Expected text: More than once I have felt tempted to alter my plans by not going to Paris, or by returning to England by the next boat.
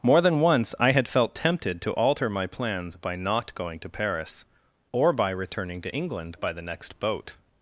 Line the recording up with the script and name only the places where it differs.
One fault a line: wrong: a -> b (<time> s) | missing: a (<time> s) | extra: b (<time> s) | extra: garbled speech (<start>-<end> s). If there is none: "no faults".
wrong: have -> had (0.9 s)